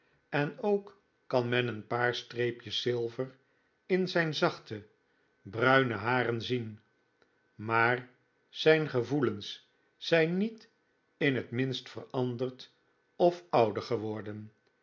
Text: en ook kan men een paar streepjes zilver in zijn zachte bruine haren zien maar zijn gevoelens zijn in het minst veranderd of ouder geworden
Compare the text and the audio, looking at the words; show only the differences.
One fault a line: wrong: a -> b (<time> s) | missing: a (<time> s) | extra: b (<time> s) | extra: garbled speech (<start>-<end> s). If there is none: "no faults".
extra: niet (10.4 s)